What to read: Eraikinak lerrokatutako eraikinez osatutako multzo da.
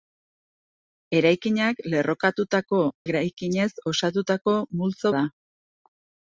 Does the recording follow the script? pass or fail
pass